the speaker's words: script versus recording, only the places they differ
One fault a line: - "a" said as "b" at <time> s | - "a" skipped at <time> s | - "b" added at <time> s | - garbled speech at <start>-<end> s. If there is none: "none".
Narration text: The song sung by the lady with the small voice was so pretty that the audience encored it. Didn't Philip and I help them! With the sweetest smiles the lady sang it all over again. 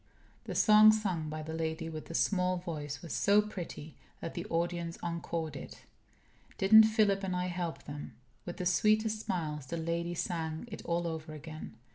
none